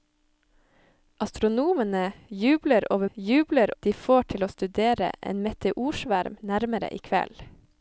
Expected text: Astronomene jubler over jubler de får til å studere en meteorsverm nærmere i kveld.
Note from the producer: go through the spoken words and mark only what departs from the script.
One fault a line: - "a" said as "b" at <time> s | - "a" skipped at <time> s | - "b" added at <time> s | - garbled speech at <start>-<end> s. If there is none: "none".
none